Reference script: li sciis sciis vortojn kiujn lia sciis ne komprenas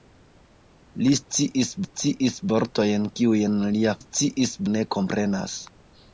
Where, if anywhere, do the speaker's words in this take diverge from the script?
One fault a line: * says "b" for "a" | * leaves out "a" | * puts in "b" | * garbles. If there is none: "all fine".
all fine